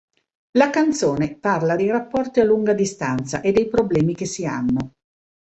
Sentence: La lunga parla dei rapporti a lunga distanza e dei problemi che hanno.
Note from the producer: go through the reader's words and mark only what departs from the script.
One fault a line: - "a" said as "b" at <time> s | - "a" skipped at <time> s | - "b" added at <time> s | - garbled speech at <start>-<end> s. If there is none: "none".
- "lunga" said as "canzone" at 0.7 s
- "si" added at 4.3 s